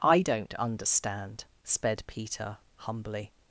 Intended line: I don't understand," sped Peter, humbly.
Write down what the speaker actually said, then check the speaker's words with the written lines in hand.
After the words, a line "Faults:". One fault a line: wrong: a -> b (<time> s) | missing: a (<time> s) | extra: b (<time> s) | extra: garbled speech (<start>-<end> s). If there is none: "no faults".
I don't understand," sped Peter, humbly.
Faults:
no faults